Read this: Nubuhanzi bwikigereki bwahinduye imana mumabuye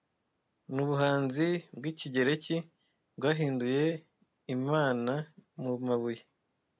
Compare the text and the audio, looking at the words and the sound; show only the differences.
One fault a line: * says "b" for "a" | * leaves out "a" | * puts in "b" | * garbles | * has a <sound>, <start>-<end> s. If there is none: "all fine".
all fine